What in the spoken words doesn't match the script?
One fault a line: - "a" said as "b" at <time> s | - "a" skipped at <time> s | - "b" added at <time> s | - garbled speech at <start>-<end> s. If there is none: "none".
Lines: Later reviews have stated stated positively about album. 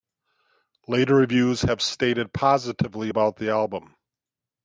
- "stated" skipped at 2.3 s
- "the" added at 3.4 s